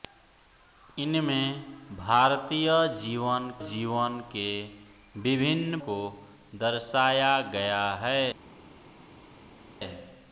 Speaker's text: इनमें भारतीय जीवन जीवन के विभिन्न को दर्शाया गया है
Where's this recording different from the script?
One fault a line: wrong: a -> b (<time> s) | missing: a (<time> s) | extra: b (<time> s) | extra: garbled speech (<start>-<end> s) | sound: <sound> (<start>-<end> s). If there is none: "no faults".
no faults